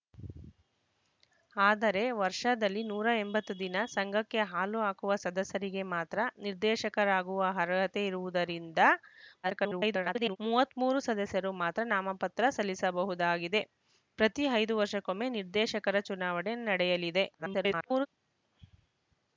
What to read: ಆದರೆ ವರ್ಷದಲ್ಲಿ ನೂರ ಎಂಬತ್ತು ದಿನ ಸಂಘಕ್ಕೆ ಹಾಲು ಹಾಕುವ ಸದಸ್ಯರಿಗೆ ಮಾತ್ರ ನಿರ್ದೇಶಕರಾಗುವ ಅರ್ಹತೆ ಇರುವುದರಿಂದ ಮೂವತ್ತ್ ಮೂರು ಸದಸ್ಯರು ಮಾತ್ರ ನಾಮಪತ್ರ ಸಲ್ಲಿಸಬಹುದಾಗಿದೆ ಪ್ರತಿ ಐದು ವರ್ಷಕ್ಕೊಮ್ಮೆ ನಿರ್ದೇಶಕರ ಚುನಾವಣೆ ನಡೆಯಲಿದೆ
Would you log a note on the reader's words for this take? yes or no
yes